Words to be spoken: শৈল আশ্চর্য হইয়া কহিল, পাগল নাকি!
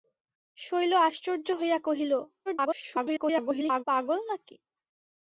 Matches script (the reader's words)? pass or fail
fail